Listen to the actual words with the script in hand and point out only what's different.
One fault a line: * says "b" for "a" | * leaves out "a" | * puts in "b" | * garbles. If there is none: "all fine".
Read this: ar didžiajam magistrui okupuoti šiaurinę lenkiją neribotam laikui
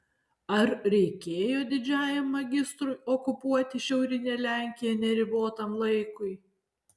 * puts in "reikėjo"